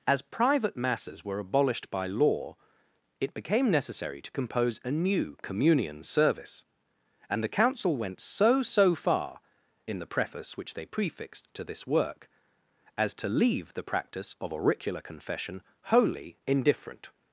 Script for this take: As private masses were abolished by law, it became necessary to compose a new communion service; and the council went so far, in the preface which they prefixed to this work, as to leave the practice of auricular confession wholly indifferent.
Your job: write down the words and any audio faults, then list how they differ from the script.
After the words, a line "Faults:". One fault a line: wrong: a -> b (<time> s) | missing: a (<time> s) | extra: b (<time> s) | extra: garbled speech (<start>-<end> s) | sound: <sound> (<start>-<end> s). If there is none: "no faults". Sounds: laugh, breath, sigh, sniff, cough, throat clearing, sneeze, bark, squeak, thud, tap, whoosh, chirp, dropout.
As private masses were abolished by law, it became necessary to compose a new communion service; and the council went so so far, in the preface which they prefixed to this work, as to leave the practice of auricular confession wholly indifferent.
Faults:
extra: so (8.6 s)